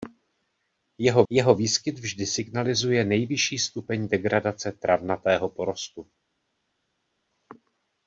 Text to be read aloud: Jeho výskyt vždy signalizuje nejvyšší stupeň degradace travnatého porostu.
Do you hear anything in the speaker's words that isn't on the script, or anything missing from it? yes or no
yes